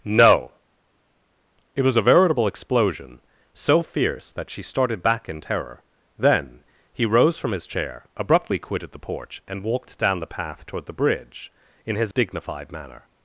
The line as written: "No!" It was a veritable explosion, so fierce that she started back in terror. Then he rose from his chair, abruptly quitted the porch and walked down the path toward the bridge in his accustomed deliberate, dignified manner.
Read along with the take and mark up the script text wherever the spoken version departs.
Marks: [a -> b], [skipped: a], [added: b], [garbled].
"No!" It was a veritable explosion, so fierce that she started back in terror. Then he rose from his chair, abruptly quitted the porch and walked down the path toward the bridge in his [skipped: accustomed deliberate,] dignified manner.